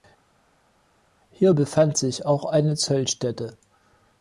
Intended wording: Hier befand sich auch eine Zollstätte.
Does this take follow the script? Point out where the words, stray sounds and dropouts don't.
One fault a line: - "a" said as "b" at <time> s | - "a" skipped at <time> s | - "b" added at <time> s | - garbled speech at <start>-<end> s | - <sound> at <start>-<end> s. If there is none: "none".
none